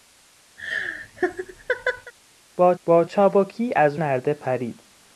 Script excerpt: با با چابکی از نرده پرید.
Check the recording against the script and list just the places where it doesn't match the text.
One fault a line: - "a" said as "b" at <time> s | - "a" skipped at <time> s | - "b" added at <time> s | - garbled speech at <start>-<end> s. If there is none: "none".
none